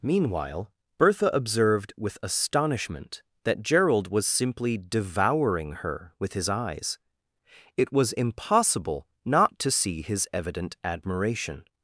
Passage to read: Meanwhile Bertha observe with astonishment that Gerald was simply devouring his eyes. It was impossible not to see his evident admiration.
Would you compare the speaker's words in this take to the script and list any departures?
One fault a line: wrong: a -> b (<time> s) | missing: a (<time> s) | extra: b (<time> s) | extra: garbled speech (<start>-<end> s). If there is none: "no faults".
wrong: observe -> observed (1.3 s)
extra: her with (5.7 s)